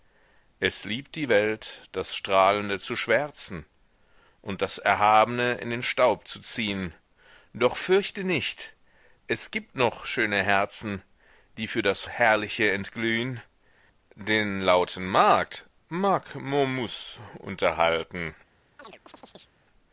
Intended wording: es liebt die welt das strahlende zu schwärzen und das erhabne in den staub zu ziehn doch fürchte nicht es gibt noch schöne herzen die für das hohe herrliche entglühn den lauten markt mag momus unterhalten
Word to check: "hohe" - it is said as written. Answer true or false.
false